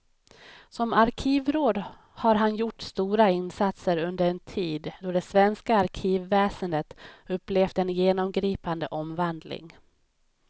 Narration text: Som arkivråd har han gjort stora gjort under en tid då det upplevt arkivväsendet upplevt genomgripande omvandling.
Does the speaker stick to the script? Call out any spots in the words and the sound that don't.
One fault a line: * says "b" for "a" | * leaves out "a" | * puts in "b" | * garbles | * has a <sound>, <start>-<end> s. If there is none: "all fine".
* says "insatser" for "gjort"
* says "svenska" for "upplevt"
* puts in "en"